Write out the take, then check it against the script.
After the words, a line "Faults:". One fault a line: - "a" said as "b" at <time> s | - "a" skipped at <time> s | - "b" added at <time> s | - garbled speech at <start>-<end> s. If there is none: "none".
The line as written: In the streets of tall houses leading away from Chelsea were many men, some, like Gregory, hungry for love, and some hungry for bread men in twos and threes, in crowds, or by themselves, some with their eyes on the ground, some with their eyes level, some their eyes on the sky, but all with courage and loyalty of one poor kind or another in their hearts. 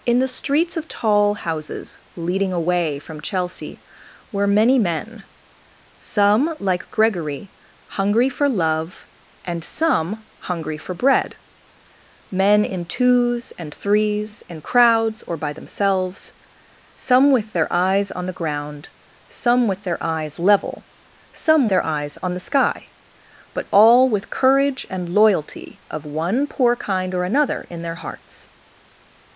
In the streets of tall houses leading away from Chelsea were many men, some, like Gregory, hungry for love, and some hungry for bread men in twos and threes, in crowds, or by themselves, some with their eyes on the ground, some with their eyes level, some their eyes on the sky, but all with courage and loyalty of one poor kind or another in their hearts.
Faults:
none